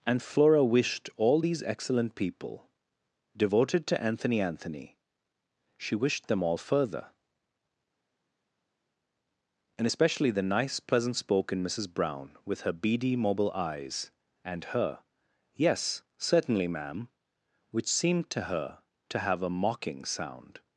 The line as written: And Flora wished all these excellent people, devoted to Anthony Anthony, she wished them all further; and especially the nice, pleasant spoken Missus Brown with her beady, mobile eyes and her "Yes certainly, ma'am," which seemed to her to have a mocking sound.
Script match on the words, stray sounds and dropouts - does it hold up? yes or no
yes